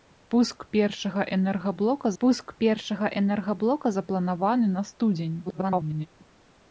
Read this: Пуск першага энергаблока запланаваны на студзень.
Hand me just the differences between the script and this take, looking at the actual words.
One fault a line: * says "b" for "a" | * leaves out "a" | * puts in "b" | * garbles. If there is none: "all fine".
* puts in "пуск першага энергаблока"
* garbles